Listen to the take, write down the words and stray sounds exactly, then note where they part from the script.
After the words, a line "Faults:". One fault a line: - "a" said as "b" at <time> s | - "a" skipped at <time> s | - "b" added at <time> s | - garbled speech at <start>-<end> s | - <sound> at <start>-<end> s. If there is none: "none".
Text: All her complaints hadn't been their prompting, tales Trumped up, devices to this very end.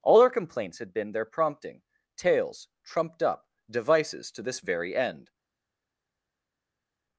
All her complaints had been their prompting, tales Trumped up, devices to this very end.
Faults:
- "hadn't" said as "had" at 0.8 s